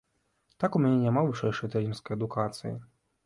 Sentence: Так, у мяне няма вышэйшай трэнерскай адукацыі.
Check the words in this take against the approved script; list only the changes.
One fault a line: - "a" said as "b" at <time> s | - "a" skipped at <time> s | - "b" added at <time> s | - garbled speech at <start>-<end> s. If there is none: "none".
none